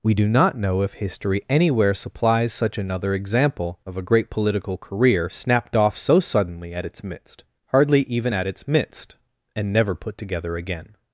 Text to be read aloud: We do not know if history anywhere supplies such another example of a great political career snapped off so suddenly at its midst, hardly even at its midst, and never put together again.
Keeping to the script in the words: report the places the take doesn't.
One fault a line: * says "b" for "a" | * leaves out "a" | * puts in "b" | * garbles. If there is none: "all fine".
all fine